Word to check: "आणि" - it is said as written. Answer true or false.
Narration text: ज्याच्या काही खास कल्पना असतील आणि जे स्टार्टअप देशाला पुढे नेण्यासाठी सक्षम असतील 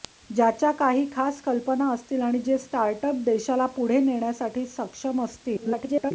true